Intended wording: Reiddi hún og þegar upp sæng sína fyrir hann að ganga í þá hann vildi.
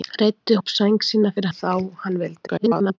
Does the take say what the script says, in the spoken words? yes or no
no